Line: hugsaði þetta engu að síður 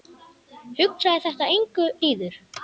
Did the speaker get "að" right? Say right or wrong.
wrong